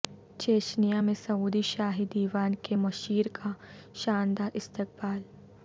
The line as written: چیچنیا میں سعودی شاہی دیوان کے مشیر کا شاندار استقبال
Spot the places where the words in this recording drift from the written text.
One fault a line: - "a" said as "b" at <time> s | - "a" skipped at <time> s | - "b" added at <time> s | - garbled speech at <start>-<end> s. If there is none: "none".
none